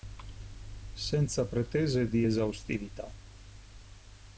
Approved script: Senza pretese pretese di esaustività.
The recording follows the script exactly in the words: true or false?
false